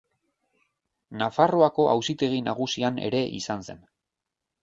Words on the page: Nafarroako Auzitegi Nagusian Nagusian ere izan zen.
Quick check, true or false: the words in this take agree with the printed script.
false